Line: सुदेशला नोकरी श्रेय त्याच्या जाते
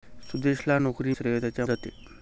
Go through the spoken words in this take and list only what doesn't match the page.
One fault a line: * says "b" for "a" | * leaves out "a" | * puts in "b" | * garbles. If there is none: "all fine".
all fine